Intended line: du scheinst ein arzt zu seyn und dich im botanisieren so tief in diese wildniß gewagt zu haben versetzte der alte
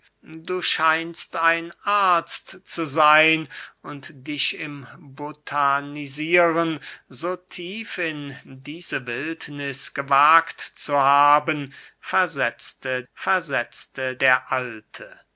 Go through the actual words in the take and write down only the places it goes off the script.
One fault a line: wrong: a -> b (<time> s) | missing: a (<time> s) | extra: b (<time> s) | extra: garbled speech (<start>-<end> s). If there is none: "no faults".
extra: versetzte (13.1 s)